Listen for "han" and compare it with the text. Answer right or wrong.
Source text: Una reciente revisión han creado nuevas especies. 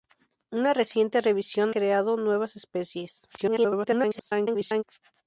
wrong